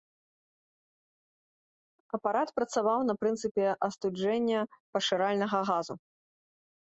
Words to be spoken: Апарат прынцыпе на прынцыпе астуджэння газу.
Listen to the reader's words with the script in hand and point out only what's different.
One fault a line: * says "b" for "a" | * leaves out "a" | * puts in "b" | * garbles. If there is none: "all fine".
* says "працаваў" for "прынцыпе"
* puts in "пашыральнага"